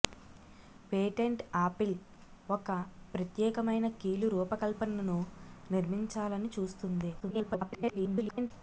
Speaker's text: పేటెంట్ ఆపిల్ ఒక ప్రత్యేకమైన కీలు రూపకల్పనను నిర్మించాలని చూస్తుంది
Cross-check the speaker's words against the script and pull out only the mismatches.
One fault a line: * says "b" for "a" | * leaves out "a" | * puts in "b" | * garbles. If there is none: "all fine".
* garbles